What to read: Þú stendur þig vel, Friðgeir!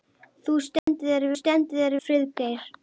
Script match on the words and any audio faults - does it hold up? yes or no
no